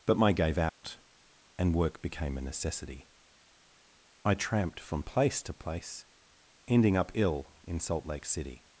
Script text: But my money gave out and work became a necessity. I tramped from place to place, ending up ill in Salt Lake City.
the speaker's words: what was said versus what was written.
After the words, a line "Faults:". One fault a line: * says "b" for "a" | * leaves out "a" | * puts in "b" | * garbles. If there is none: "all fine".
But my gave out and work became a necessity. I tramped from place to place, ending up ill in Salt Lake City.
Faults:
* leaves out "money"